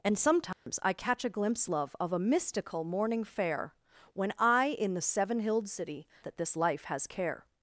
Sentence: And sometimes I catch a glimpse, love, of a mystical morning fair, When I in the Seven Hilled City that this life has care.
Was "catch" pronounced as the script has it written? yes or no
yes